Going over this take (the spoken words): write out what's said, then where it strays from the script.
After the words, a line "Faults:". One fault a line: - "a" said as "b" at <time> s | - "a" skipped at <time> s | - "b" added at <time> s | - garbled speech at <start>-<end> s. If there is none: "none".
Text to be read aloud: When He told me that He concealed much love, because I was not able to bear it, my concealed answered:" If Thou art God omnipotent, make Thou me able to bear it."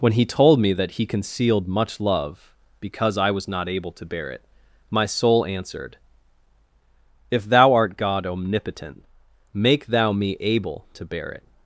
When He told me that He concealed much love, because I was not able to bear it, my soul answered:" If Thou art God omnipotent, make Thou me able to bear it."
Faults:
- "concealed" said as "soul" at 5.0 s